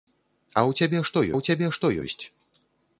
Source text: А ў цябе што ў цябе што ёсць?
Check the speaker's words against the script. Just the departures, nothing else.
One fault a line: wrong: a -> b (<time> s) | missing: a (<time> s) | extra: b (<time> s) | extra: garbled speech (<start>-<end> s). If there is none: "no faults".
no faults